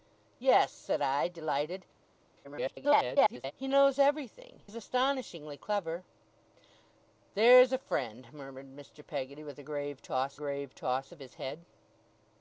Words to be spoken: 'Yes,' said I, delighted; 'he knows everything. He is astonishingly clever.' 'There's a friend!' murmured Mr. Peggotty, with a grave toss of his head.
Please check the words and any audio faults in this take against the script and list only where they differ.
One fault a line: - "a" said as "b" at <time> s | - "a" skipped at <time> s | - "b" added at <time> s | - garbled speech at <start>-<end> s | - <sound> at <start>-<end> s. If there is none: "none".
- garbled speech at 2.4-3.5 s
- "He" skipped at 4.6 s
- "grave toss" added at 10.3 s